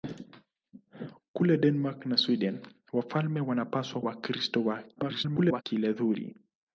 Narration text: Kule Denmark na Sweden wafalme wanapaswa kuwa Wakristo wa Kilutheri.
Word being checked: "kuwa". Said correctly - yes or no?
no